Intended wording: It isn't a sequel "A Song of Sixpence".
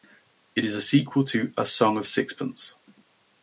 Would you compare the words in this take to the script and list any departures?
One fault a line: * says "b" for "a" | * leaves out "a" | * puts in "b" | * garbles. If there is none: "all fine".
* says "is" for "isn't"
* puts in "to"